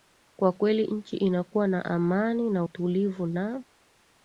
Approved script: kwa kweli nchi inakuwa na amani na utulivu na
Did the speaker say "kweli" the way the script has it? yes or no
yes